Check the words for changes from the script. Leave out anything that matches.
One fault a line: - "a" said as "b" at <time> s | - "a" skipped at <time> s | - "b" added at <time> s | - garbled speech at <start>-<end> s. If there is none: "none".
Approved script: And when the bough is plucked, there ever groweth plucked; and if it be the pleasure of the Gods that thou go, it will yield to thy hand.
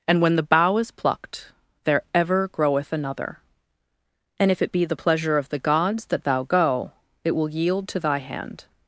- "plucked" said as "another" at 2.9 s